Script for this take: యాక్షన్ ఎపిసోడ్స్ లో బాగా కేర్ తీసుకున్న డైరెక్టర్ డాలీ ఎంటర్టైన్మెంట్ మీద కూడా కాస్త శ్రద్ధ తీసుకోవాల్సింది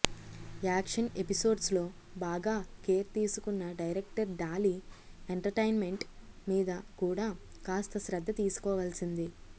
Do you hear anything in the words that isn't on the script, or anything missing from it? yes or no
no